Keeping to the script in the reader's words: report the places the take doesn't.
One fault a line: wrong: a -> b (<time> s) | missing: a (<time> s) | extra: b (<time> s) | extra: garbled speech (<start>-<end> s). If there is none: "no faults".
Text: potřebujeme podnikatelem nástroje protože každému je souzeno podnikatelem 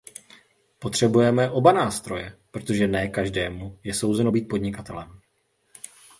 wrong: podnikatelem -> oba (1.5 s)
extra: ne (2.9 s)
extra: být (4.3 s)